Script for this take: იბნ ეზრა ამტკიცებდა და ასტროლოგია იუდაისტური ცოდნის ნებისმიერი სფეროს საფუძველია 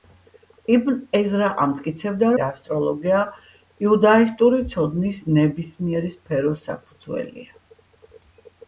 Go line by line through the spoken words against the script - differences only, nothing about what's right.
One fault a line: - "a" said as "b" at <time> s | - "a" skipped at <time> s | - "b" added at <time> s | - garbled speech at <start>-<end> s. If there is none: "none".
none